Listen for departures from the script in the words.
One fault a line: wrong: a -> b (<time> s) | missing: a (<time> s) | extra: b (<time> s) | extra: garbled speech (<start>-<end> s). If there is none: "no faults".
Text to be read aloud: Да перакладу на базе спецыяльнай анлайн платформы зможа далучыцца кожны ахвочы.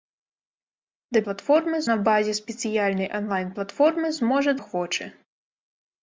wrong: перакладу -> платформы (1.3 s)
missing: далучыцца кожны (4.5 s)